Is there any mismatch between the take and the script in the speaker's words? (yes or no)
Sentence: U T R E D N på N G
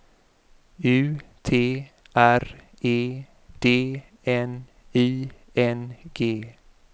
yes